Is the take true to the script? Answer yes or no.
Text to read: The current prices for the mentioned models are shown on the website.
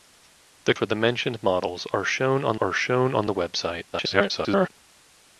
no